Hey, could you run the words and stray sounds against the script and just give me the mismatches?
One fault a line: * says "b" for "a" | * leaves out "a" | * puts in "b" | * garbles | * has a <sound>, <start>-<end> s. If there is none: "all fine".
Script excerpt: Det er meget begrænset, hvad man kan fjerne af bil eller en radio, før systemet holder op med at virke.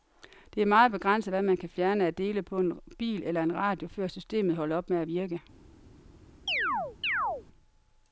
* puts in "dele på en"
* has a chirp, 6.5-7.4 s